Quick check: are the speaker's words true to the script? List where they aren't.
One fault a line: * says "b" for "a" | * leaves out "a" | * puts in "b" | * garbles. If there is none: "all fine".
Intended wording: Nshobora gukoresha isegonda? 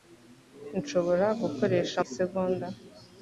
all fine